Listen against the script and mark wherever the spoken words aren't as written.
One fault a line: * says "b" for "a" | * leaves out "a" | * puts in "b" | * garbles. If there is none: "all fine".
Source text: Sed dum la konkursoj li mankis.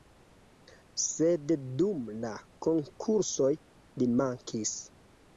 all fine